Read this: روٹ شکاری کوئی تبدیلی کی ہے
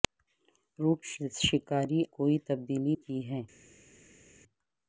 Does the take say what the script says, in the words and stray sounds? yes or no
yes